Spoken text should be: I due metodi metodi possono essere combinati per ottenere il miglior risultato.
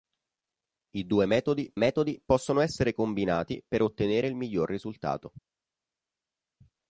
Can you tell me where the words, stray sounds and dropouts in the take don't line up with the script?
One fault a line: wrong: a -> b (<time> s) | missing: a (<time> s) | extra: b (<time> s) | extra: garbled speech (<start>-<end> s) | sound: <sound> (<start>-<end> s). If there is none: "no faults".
no faults